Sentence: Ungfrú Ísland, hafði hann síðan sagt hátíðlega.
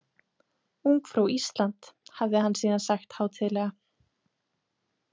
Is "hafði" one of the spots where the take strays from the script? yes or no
no